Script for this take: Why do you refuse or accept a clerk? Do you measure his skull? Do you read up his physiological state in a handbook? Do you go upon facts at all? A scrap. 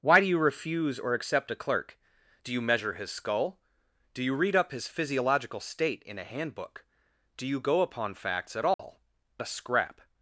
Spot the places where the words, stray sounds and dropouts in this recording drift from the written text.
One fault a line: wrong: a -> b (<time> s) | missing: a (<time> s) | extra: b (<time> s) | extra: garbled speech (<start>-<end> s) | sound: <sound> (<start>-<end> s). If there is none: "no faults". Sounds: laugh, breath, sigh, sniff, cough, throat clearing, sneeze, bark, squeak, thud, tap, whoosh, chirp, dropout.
sound: dropout (8.7-8.8 s)